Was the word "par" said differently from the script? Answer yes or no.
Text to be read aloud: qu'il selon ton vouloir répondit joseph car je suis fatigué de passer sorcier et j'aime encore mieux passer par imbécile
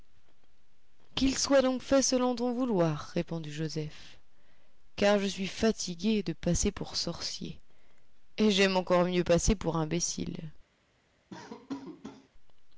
yes